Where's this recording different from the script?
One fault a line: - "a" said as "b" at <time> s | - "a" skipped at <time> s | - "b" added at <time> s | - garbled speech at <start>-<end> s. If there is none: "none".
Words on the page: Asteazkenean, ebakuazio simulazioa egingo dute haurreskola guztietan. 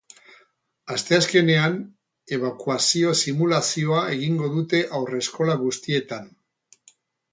none